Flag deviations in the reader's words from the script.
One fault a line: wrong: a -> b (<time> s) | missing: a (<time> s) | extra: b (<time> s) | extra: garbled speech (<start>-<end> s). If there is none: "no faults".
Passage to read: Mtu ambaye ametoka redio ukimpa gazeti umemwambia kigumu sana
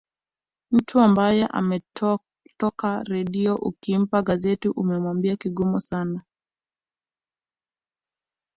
no faults